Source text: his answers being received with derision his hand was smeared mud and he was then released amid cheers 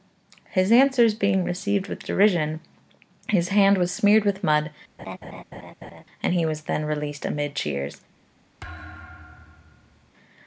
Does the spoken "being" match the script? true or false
true